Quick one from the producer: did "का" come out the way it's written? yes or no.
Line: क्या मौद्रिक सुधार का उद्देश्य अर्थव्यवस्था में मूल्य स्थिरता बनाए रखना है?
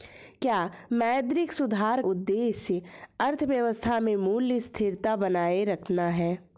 no